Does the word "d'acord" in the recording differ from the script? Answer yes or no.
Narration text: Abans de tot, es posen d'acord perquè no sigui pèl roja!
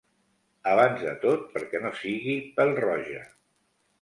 yes